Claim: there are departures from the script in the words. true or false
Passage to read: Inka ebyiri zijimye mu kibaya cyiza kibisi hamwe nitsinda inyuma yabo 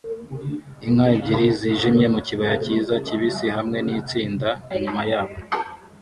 false